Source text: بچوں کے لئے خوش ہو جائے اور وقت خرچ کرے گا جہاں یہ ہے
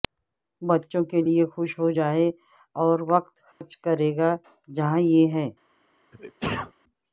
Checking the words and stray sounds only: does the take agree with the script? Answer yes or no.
no